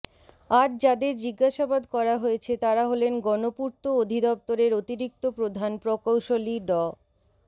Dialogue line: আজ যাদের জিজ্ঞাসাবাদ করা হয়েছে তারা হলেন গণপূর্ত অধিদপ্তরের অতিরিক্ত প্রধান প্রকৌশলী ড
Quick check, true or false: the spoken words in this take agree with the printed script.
true